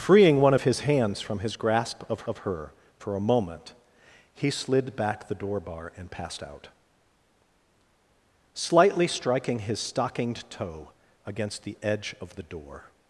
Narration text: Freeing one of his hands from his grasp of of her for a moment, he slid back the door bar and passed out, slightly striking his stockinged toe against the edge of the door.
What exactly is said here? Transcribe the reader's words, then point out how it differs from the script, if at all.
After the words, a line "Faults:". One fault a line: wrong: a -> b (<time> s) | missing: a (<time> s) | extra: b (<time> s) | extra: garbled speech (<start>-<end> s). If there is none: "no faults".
Freeing one of his hands from his grasp of of her for a moment, he slid back the door bar and passed out, slightly striking his stockinged toe against the edge of the door.
Faults:
no faults